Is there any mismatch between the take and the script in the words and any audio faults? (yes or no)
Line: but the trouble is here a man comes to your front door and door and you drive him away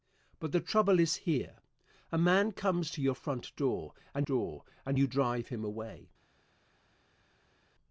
no